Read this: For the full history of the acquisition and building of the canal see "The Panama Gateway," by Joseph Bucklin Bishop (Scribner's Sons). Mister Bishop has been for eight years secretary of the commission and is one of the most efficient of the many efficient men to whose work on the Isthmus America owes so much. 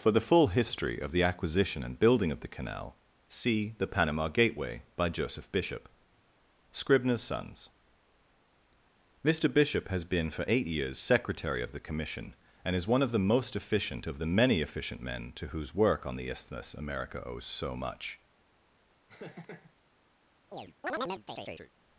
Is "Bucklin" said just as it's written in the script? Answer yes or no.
no